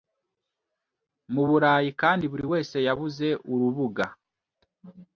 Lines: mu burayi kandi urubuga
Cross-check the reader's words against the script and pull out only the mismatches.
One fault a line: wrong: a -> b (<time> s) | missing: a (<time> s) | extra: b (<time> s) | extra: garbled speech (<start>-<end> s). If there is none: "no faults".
extra: buri wese yabuze (2.3 s)